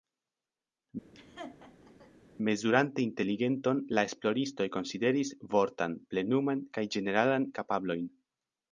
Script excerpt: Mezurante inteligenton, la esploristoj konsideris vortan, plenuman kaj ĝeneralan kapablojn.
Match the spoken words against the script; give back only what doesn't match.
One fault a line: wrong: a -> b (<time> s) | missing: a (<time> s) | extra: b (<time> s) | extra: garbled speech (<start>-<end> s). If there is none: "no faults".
no faults